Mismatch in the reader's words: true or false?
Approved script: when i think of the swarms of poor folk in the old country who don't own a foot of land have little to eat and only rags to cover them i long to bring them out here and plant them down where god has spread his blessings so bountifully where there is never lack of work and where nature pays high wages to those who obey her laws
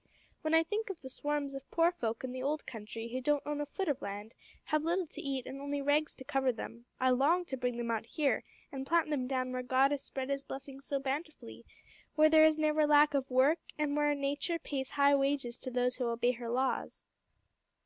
false